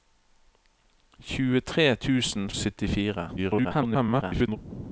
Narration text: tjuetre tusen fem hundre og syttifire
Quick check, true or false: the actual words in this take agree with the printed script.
false